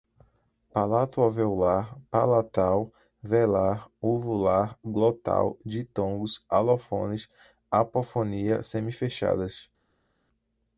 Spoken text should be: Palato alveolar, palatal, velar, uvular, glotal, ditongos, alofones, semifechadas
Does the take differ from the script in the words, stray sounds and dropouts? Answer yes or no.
yes